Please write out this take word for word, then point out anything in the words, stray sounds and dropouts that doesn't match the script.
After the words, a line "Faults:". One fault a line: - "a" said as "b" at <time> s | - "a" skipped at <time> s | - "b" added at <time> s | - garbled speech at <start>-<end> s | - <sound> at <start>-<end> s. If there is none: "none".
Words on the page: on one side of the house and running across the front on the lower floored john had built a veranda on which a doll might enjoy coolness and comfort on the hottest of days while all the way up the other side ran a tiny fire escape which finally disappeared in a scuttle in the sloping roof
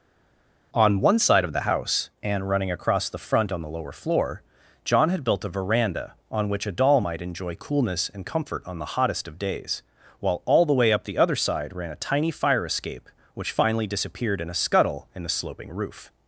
on one side of the house and running across the front on the lower floor john had built a veranda on which a doll might enjoy coolness and comfort on the hottest of days while all the way up the other side ran a tiny fire escape which finally disappeared in a scuttle in the sloping roof
Faults:
- "floored" said as "floor" at 3.9 s